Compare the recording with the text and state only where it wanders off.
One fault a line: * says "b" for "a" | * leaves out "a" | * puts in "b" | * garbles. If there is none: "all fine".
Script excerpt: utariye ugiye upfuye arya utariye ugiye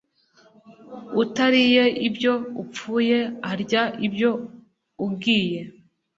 * says "ibyo" for "ugiye"
* says "ibyo" for "utariye"